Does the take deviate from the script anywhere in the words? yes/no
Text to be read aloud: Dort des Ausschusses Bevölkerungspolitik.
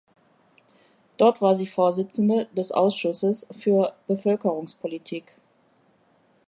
yes